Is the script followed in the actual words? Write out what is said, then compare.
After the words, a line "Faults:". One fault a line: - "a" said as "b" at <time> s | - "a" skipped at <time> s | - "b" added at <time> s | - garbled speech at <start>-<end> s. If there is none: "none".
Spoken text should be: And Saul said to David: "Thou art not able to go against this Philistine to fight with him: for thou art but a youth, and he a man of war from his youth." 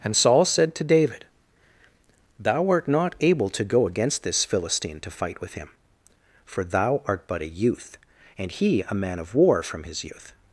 And Saul said to David: "Thou art not able to go against this Philistine to fight with him: for thou art but a youth, and he a man of war from his youth."
Faults:
none